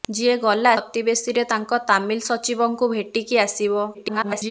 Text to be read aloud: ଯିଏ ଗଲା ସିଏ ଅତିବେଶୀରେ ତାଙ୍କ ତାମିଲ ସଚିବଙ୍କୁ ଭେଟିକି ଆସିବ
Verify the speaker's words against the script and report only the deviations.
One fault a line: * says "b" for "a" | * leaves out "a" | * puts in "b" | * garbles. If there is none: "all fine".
* leaves out "ସିଏ"
* garbles